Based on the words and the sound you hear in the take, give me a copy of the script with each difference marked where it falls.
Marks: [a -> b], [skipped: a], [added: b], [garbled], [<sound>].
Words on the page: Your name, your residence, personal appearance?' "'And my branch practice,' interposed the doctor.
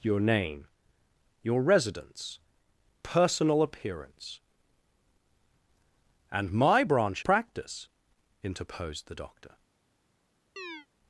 Your name, your residence, personal appearance?' "'And my branch practice,' interposed the doctor. [chirp]